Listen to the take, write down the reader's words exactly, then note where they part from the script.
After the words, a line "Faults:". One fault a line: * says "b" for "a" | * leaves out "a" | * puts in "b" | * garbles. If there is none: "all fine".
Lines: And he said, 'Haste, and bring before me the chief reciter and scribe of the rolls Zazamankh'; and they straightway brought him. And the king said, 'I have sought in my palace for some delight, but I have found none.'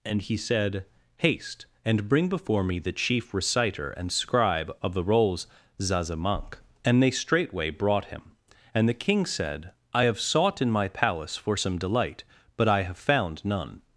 And he said, 'Haste, and bring before me the chief reciter and scribe of the rolls Zazamankh'; and they straightway brought him. And the king said, 'I have sought in my palace for some delight, but I have found none.'
Faults:
all fine